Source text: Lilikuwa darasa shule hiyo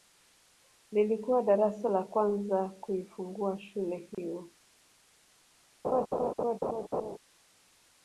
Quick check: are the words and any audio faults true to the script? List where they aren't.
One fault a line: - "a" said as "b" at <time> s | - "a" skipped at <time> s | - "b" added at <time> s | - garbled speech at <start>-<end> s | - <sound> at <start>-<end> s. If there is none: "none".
- "la kwanza kuifungua" added at 1.9 s
- dropout at 4.1-4.2 s
- laugh at 5.8-7.2 s